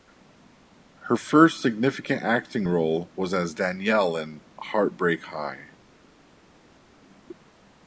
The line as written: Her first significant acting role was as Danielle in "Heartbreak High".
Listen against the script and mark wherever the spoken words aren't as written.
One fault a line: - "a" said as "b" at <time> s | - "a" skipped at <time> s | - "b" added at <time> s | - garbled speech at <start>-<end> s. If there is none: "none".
none